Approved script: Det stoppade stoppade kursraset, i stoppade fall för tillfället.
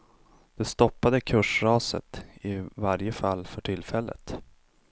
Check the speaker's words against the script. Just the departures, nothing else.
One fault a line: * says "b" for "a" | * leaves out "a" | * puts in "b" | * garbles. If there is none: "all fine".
* leaves out "stoppade"
* says "varje" for "stoppade"